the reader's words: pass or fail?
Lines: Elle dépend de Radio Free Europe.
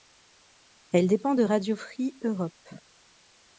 pass